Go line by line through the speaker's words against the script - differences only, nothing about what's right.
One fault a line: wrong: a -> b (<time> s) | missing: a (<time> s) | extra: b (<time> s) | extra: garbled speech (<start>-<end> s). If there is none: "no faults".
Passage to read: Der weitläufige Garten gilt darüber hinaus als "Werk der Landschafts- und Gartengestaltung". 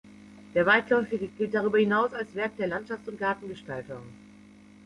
missing: Garten (1.3 s)